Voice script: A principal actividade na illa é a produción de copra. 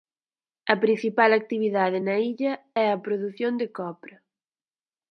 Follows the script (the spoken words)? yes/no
yes